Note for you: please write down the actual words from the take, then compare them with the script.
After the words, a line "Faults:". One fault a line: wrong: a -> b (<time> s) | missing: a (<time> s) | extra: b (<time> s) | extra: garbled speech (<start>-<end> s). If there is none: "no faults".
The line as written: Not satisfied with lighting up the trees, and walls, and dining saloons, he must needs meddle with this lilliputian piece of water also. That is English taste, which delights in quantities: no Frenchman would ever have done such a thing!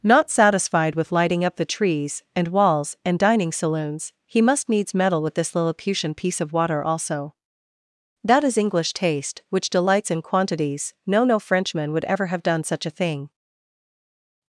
Not satisfied with lighting up the trees, and walls, and dining saloons, he must needs meddle with this lilliputian piece of water also. That is English taste, which delights in quantities: no no Frenchman would ever have done such a thing!
Faults:
extra: no (11.2 s)